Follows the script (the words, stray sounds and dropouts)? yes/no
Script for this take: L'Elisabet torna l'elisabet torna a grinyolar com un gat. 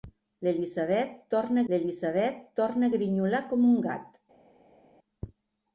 yes